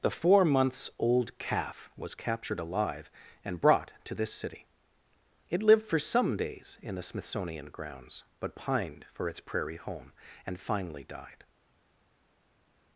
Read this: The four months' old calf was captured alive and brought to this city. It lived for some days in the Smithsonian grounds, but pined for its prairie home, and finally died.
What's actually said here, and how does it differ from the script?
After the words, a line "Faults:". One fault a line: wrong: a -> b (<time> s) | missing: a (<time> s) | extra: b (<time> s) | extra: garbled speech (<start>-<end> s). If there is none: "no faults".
The four months' old calf was captured alive and brought to this city. It lived for some days in the Smithsonian grounds, but pined for its prairie home, and finally died.
Faults:
no faults